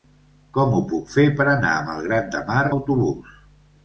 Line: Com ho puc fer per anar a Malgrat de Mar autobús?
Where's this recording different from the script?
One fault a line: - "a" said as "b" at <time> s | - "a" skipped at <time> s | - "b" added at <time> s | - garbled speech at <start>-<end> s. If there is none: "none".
none